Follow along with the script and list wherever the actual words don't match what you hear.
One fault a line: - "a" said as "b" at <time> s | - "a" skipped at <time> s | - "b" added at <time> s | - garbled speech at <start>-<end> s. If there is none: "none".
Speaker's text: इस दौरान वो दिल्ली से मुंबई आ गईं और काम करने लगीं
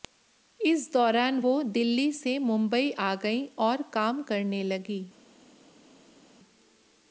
none